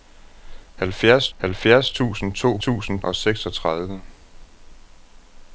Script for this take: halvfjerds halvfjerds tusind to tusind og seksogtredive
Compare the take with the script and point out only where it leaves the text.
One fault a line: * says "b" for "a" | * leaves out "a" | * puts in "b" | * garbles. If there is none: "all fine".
all fine